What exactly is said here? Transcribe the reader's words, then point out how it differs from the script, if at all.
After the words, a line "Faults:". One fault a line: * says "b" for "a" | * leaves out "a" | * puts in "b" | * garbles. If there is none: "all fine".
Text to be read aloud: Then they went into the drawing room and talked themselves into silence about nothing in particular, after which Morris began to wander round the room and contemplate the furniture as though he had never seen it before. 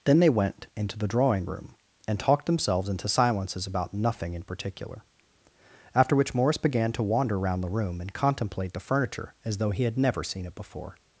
Then they went into the drawing room and talked themselves into silences about nothing in particular, after which Morris began to wander round the room and contemplate the furniture as though he had never seen it before.
Faults:
* says "silences" for "silence"